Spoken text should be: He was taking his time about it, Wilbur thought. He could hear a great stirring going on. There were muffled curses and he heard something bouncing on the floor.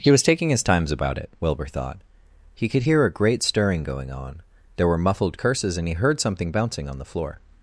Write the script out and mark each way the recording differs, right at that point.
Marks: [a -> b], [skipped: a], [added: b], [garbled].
He was taking his [time -> times] about it, Wilbur thought. He could hear a great stirring going on. There were muffled curses and he heard something bouncing on the floor.